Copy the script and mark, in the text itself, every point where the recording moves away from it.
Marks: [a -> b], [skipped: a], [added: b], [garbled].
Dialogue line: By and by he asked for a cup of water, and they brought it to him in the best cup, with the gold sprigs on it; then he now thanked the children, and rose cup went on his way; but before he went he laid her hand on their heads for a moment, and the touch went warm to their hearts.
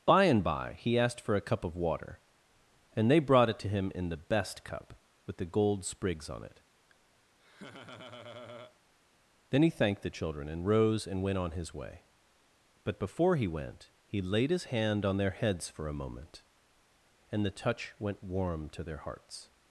By and by he asked for a cup of water, and they brought it to him in the best cup, with the gold sprigs on it; then he [skipped: now] thanked the children, and rose [cup -> and] went on his way; but before he went he laid [her -> his] hand on their heads for a moment, and the touch went warm to their hearts.